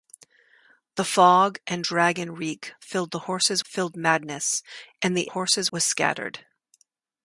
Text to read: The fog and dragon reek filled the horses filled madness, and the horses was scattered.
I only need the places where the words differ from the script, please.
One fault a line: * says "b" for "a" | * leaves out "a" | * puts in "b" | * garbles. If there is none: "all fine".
all fine